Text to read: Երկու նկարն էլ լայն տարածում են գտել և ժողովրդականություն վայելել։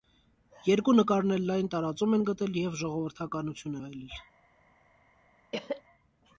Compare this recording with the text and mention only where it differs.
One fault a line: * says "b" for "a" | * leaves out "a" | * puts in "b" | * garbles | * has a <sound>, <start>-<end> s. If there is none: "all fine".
* has a cough, 5.5-5.8 s